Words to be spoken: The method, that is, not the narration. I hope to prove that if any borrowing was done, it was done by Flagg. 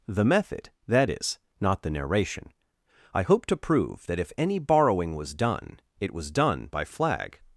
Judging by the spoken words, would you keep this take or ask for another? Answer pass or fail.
pass